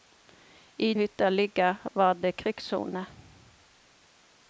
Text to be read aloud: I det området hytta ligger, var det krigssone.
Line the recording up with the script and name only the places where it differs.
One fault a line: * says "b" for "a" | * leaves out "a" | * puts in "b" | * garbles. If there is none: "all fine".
* leaves out "det området"